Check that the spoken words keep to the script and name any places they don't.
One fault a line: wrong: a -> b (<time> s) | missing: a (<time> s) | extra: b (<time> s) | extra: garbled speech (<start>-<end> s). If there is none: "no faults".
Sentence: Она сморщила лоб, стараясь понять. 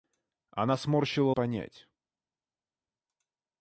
missing: лоб стараясь (1.3 s)